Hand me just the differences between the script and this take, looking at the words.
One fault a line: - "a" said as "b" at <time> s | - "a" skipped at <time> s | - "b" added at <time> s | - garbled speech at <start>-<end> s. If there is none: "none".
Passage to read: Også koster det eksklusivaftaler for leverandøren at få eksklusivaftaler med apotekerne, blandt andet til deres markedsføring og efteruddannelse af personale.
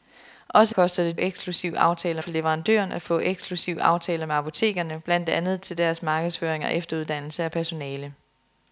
none